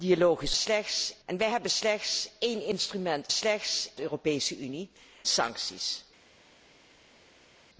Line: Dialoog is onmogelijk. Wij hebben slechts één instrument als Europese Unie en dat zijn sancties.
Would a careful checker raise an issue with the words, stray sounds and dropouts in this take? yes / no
yes